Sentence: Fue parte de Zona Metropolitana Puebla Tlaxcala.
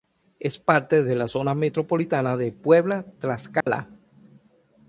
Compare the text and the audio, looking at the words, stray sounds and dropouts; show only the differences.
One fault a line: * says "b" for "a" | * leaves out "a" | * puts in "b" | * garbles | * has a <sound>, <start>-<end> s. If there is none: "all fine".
* says "Es" for "Fue"
* puts in "la"
* puts in "de"
* has a dropout, 3.6-3.7 s